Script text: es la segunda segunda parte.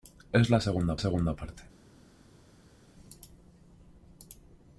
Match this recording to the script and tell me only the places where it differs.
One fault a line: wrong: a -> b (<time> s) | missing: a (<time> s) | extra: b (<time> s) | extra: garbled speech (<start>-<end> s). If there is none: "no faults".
no faults